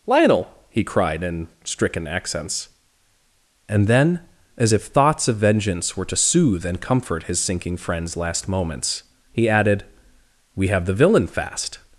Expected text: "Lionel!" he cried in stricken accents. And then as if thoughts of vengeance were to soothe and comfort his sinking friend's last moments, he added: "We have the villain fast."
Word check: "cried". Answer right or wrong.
right